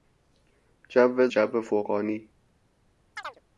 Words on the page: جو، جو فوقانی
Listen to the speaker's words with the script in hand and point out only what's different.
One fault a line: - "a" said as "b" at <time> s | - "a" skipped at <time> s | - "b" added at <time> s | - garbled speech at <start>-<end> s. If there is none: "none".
none